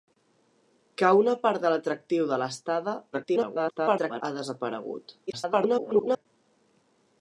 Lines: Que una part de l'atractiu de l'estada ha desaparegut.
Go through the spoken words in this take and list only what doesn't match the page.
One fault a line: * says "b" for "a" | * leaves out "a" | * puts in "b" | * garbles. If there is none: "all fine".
* garbles
* garbles